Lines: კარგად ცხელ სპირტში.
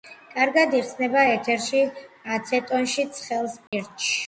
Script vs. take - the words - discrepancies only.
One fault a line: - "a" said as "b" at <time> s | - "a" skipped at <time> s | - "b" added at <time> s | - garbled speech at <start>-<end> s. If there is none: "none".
- "იხსნება ეთერში აცეტონში" added at 0.8 s